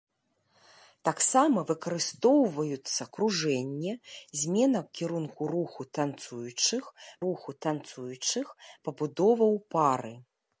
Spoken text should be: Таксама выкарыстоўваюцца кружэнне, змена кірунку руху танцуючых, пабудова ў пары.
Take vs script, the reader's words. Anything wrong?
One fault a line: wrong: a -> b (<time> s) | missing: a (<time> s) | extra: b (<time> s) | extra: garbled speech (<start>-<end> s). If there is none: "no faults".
extra: руху танцуючых (7.3 s)